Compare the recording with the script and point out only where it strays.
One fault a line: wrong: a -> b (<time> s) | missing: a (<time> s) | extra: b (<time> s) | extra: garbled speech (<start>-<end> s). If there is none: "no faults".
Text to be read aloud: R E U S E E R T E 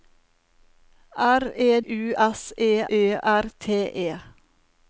no faults